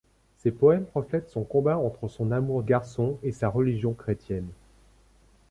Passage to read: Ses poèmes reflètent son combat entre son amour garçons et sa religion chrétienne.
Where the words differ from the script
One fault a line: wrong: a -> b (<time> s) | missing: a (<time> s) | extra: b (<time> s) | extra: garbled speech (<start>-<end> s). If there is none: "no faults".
no faults